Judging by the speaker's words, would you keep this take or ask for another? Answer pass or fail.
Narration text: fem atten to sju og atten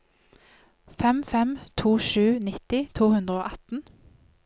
fail